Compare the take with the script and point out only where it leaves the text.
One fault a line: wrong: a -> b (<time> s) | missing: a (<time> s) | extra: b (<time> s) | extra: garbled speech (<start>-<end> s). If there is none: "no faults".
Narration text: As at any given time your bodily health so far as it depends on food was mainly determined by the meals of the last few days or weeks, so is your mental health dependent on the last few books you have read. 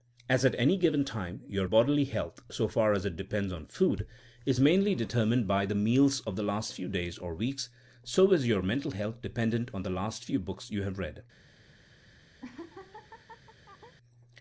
wrong: was -> is (4.4 s)